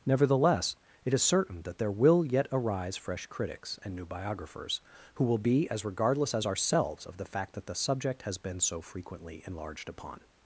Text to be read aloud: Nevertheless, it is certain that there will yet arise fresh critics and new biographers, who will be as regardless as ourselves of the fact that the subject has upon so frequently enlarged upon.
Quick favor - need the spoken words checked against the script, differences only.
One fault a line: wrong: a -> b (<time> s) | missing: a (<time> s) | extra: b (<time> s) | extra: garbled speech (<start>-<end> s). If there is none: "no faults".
wrong: upon -> been (8.4 s)